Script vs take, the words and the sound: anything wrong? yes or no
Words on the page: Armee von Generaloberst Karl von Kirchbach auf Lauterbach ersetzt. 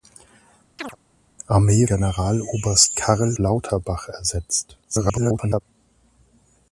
yes